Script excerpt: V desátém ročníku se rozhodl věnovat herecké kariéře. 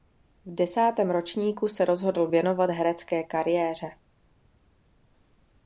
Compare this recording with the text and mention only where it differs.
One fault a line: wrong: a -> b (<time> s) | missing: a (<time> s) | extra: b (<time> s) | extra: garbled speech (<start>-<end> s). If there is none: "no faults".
no faults